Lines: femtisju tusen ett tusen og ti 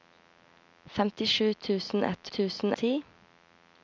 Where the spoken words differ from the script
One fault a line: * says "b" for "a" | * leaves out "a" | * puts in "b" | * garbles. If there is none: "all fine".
all fine